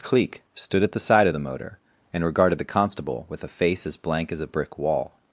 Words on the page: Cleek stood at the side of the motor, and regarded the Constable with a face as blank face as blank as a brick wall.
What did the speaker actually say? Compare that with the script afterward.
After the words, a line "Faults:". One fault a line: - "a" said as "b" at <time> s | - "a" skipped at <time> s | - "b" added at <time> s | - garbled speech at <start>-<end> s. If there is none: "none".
Cleek stood at the side of the motor, and regarded the Constable with a face as blank as a brick wall.
Faults:
- "face as blank" skipped at 4.3 s